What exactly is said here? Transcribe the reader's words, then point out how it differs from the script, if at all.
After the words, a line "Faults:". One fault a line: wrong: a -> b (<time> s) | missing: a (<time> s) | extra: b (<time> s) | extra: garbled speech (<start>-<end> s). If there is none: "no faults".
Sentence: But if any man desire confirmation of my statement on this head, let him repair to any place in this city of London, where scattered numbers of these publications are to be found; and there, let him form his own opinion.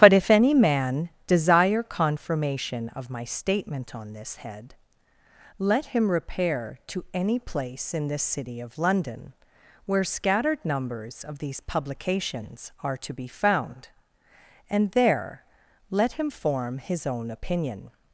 But if any man desire confirmation of my statement on this head, let him repair to any place in this city of London, where scattered numbers of these publications are to be found; and there, let him form his own opinion.
Faults:
no faults